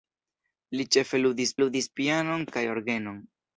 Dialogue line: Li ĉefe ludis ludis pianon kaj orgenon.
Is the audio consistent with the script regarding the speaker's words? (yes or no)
yes